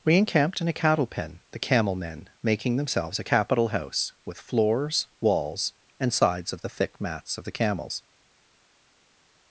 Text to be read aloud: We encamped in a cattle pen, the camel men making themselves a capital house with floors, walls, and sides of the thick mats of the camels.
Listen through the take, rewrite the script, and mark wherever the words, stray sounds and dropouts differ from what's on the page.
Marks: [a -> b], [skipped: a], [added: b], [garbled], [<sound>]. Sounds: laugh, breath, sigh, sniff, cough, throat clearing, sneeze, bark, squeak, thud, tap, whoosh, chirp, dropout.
We encamped in a cattle pen, the camel men making themselves a capital house with floors, walls, and sides of the thick mats of the camels.